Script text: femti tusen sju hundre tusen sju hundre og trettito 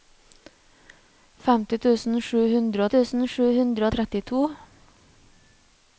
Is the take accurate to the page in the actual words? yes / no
yes